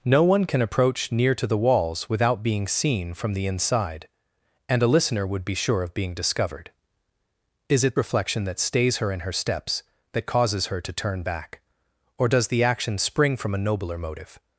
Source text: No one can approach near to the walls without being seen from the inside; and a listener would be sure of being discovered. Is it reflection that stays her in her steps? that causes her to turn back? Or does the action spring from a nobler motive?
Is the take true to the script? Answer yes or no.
yes